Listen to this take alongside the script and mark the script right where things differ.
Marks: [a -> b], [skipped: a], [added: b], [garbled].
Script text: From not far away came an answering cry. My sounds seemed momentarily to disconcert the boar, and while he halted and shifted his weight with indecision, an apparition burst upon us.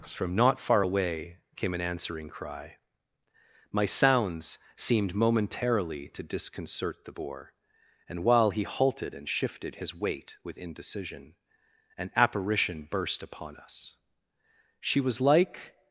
From not far away came an answering cry. My sounds seemed momentarily to disconcert the boar, and while he halted and shifted his weight with indecision, an apparition burst upon us. [added: She was like]